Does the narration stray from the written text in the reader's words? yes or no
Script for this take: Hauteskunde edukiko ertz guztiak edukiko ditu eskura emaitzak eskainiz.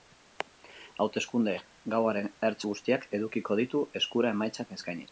yes